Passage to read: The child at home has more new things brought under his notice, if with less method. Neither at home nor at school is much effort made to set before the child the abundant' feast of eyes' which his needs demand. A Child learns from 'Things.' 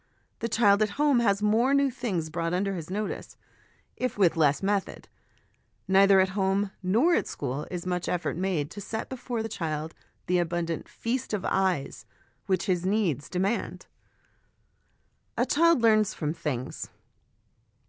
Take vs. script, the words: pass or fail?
pass